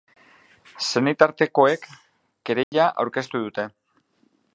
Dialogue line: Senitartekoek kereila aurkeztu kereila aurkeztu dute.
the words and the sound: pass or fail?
fail